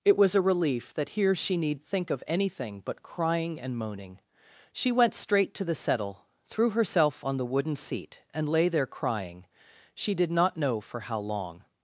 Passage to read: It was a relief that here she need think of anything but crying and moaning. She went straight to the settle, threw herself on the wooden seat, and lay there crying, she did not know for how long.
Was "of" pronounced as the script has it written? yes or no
yes